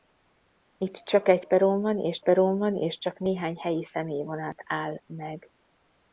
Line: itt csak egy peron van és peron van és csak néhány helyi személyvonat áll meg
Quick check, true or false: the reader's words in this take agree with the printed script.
true